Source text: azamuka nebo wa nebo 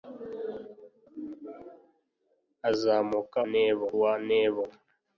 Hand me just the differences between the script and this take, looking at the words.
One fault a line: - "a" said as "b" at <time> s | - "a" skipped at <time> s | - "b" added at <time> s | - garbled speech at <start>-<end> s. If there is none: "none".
none